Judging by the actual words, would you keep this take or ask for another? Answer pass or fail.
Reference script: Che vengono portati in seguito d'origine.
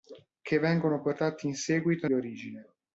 pass